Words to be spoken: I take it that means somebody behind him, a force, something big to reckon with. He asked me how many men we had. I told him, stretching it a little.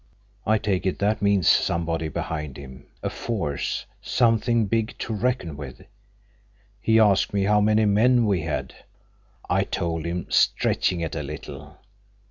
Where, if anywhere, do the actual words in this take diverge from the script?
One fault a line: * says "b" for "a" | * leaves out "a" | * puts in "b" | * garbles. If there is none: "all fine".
all fine